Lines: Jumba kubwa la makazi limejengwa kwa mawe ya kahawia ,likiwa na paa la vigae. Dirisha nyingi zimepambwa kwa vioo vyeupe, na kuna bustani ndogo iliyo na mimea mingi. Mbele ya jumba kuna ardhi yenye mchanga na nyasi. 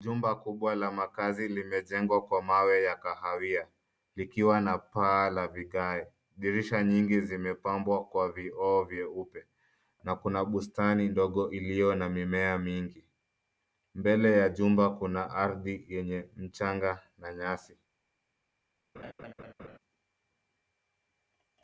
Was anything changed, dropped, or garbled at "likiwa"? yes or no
no